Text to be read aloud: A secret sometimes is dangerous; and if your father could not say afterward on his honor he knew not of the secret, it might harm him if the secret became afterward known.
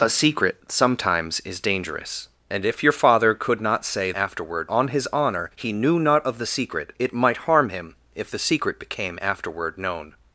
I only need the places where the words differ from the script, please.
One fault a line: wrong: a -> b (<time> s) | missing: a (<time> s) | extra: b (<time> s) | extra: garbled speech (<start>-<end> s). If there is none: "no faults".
no faults